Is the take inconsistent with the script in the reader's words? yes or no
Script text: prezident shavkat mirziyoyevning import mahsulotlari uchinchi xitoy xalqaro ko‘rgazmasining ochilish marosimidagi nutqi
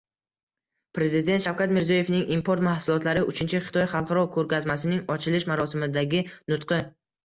no